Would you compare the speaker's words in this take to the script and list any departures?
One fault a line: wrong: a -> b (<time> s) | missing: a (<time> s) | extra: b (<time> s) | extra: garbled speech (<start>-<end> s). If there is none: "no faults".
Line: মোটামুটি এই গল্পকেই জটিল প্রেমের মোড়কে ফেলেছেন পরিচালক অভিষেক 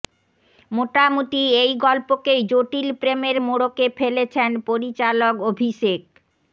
no faults